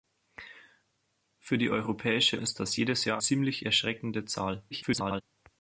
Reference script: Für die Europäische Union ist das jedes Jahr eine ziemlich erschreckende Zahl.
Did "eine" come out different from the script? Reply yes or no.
yes